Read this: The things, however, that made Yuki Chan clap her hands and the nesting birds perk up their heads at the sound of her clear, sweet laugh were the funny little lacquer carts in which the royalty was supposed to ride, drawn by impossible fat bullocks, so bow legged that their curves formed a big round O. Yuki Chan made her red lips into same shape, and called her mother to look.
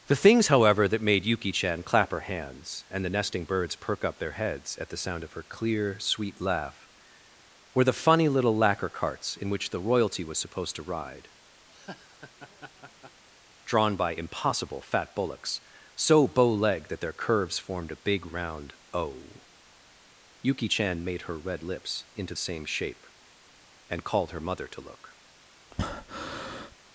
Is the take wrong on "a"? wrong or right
right